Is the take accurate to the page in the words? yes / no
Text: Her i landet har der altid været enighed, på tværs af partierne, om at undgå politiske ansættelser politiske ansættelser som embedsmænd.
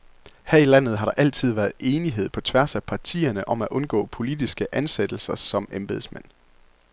no